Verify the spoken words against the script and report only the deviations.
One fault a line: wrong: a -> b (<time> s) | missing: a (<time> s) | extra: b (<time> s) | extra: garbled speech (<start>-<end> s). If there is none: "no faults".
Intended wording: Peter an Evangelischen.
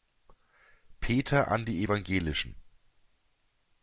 extra: die (1.6 s)